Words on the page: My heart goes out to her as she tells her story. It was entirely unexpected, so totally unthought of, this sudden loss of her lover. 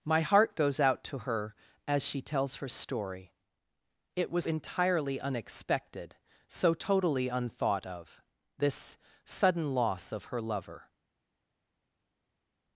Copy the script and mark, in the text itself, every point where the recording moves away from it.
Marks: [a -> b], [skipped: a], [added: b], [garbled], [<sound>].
My heart goes out to her as she tells her story. It was entirely unexpected, so totally unthought of, this sudden loss of her lover.